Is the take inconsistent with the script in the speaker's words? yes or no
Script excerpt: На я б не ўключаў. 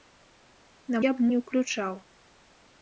no